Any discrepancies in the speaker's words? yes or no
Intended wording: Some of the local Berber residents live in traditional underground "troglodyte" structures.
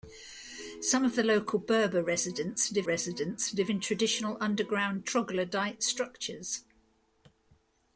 yes